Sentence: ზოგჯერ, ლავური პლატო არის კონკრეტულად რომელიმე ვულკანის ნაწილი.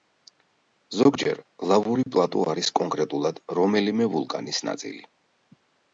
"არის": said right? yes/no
yes